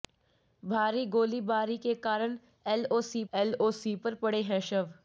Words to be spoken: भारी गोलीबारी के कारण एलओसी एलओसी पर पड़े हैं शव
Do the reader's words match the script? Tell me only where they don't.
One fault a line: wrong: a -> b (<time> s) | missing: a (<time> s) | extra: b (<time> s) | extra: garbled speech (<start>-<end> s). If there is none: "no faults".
no faults